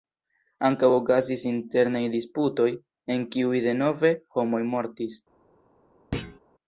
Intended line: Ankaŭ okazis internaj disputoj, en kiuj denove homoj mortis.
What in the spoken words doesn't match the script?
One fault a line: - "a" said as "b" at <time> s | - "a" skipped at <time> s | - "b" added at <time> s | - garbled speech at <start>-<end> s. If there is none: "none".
none